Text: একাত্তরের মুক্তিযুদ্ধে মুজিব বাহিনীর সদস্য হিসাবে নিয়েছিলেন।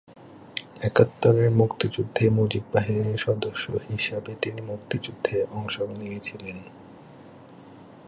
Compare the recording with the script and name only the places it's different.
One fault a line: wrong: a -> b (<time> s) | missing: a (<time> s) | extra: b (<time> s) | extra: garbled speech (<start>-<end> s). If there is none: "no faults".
extra: তিনি মুক্তিযুদ্ধে অংশ (4.4 s)